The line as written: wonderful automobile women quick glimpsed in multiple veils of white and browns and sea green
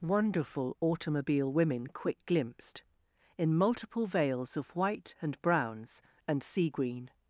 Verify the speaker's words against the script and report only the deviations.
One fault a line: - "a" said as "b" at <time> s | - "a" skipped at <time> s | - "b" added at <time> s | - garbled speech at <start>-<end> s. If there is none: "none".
none